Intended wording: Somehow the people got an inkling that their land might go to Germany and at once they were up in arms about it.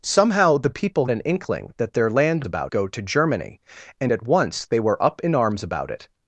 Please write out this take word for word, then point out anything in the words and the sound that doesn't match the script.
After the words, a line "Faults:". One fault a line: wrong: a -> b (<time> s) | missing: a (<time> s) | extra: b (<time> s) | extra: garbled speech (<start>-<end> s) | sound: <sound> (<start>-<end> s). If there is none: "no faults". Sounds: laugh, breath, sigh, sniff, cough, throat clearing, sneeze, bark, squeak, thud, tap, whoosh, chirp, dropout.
Somehow the people an inkling that their land about go to Germany and at once they were up in arms about it.
Faults:
missing: got (1.1 s)
wrong: might -> about (2.5 s)